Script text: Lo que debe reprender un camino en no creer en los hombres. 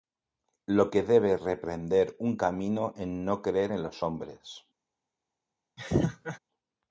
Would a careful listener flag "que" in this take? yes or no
no